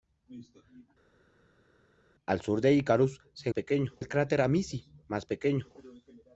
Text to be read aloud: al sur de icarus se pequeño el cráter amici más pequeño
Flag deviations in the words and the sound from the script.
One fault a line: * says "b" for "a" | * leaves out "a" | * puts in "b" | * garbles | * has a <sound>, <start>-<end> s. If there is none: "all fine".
all fine